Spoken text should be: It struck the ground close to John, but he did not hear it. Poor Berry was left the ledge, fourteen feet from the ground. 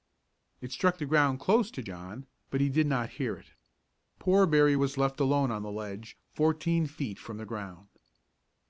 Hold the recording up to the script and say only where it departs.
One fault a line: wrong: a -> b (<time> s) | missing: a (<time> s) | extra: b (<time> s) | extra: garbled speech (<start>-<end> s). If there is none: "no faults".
extra: alone on (5.2 s)